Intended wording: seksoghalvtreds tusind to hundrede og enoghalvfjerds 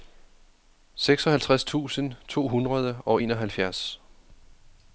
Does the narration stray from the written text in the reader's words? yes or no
no